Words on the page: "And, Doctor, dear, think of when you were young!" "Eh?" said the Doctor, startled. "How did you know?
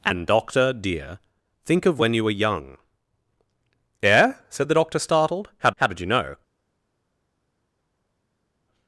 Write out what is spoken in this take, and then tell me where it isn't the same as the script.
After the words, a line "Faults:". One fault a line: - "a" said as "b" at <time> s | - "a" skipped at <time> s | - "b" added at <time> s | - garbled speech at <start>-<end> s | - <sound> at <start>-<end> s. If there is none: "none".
"And, Doctor, dear, think of when you were young!" "Eh?" said the Doctor, startled. "How how did you know?
Faults:
- "how" added at 5.7 s